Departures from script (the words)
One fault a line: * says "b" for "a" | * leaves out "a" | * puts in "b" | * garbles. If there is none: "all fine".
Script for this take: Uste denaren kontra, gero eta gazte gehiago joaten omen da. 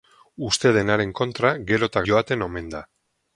* leaves out "gazte gehiago"